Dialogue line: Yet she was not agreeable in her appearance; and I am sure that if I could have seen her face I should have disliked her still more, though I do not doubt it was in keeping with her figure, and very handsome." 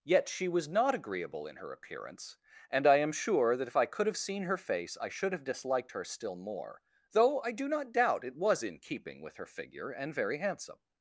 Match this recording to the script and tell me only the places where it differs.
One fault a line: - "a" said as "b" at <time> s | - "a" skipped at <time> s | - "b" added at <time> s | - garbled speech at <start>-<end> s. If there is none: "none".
none